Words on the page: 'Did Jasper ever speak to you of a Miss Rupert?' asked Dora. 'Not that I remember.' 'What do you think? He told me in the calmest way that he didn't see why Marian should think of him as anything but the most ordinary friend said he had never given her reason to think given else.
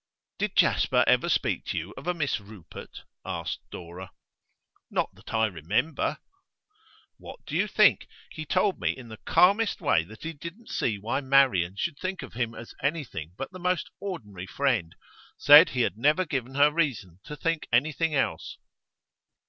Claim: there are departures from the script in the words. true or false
true